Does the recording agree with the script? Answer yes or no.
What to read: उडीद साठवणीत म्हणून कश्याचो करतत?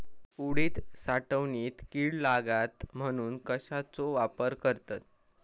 no